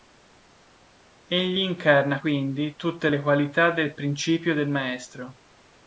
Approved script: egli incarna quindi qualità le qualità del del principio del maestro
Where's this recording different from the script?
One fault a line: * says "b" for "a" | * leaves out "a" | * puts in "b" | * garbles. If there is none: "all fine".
* says "tutte" for "qualità"
* leaves out "del"